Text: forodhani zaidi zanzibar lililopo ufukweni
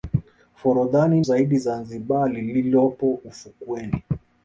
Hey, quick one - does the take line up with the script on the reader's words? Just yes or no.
yes